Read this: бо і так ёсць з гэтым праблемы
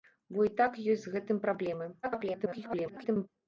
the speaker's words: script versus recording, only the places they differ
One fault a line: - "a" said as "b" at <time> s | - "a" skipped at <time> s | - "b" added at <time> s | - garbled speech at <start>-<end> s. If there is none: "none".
- garbled speech at 2.0-3.3 s